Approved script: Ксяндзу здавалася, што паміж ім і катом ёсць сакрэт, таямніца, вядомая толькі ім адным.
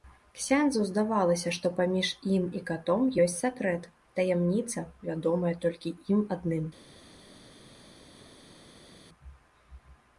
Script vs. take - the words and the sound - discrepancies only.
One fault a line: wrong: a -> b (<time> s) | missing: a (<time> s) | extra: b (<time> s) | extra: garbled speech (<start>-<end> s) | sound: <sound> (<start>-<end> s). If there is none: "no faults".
no faults